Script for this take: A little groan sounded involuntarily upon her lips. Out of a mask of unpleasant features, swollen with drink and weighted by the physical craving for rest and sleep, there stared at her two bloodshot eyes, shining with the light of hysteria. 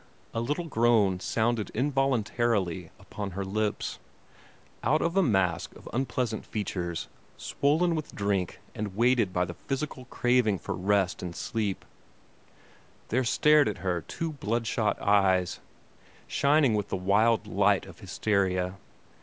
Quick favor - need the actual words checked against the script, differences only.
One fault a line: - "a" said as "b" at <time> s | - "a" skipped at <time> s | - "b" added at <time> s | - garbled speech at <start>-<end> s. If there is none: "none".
- "wild" added at 16.9 s